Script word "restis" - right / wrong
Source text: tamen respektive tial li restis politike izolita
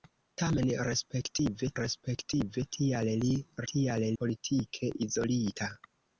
wrong